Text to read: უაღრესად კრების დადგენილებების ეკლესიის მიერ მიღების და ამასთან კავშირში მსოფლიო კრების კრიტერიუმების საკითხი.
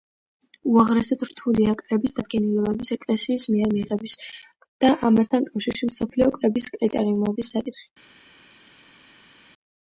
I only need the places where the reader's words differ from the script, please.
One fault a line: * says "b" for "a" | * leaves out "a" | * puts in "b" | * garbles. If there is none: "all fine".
* puts in "რთულია"